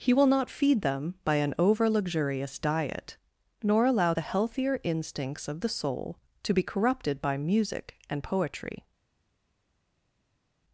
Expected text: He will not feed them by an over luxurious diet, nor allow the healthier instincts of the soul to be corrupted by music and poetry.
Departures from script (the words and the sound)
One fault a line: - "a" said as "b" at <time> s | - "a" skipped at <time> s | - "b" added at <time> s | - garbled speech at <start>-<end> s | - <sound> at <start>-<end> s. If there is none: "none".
none